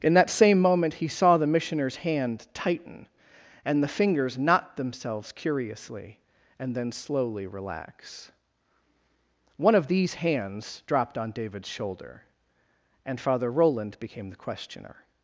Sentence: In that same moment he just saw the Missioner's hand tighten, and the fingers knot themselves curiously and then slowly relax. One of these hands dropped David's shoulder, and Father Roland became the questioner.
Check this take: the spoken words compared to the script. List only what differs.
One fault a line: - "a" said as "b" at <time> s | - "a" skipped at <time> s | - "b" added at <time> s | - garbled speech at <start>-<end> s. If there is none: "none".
- "just" skipped at 1.1 s
- "on" added at 11.2 s